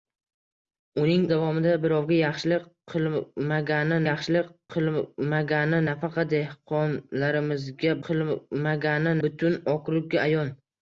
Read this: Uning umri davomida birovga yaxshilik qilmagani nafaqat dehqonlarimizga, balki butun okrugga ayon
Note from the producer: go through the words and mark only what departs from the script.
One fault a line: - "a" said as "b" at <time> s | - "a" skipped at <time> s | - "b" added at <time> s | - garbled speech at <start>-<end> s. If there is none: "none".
- "umri" skipped at 1.2 s
- "yaxshilik qilmagani" added at 4.0 s
- "balki" said as "qilmagani" at 8.1 s